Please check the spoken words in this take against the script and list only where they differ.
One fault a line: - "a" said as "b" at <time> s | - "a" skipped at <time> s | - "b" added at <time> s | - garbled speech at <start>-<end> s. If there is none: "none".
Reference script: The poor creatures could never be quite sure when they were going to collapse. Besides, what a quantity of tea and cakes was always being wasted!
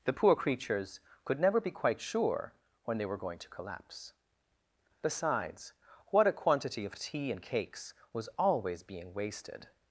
none